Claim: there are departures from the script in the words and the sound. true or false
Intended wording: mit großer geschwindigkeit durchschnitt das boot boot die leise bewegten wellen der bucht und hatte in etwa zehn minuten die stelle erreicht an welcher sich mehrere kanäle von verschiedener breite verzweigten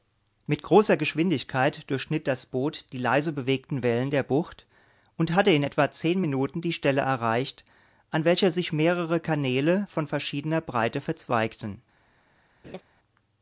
true